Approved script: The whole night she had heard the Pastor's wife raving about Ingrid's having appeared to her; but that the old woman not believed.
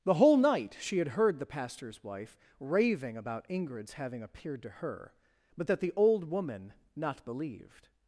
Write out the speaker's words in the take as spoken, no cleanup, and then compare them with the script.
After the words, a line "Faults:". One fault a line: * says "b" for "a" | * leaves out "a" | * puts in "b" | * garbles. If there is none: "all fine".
The whole night she had heard the Pastor's wife raving about Ingrid's having appeared to her; but that the old woman not believed.
Faults:
all fine